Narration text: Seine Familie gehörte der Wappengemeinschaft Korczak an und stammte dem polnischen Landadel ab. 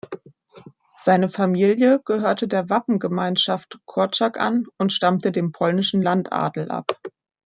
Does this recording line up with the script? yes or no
yes